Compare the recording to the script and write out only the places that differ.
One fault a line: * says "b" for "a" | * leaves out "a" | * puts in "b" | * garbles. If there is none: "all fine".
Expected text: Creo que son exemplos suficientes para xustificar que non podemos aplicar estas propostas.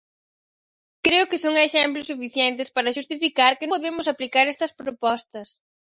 * leaves out "non"